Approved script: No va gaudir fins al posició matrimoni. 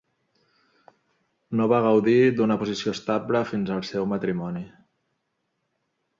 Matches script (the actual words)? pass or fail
fail